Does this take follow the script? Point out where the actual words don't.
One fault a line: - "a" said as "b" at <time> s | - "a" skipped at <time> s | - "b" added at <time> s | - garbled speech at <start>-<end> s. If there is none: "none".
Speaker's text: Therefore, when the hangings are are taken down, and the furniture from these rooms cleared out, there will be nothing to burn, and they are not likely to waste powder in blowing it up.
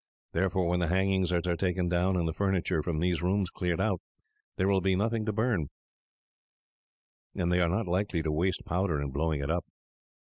none